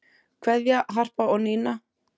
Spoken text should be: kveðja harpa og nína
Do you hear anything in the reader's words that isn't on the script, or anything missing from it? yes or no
no